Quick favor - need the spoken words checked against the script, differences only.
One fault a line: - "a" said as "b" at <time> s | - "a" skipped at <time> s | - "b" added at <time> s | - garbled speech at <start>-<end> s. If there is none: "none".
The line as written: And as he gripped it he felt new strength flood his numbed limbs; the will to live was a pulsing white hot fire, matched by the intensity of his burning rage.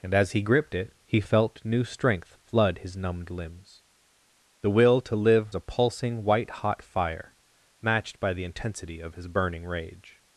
- "was" skipped at 5.5 s